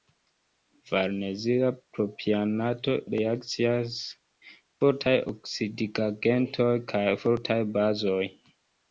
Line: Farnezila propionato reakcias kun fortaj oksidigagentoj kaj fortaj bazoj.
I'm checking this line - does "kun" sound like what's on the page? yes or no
no